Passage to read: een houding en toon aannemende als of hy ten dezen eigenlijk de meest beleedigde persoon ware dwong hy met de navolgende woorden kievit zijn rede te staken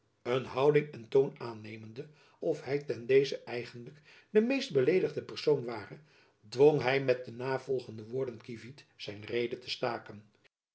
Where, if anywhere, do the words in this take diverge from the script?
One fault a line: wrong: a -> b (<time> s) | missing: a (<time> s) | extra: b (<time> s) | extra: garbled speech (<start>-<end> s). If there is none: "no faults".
missing: als (2.1 s)